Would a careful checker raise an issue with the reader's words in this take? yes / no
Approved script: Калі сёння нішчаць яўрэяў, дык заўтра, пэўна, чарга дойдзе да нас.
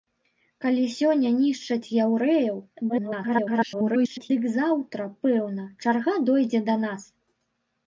yes